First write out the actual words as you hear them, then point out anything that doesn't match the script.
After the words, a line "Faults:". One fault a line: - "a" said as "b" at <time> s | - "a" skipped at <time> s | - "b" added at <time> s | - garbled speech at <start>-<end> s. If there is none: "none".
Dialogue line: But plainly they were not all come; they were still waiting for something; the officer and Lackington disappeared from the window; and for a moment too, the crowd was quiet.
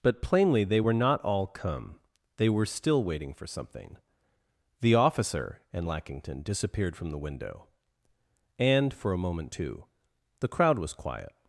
But plainly they were not all come; they were still waiting for something; the officer and Lackington disappeared from the window; and for a moment too, the crowd was quiet.
Faults:
none